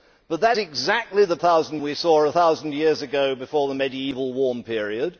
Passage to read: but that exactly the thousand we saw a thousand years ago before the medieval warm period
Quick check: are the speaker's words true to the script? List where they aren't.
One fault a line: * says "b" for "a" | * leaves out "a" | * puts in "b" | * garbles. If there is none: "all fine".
all fine